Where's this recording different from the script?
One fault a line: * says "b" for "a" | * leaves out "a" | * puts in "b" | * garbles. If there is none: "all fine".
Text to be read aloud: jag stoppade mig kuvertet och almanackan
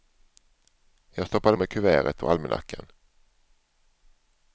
all fine